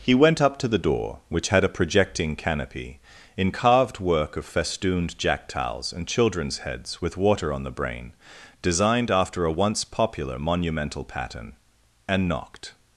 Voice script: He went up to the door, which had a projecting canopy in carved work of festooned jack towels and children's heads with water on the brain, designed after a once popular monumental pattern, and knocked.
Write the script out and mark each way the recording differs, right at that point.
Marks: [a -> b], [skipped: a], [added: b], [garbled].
He went up to the door, which had a projecting canopy in carved work of festooned jack towels and children's heads with water on the brain, designed after a once popular monumental pattern, and knocked.